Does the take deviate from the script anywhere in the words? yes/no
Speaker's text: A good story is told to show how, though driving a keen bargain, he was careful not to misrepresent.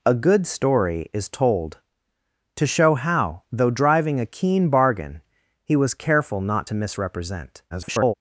yes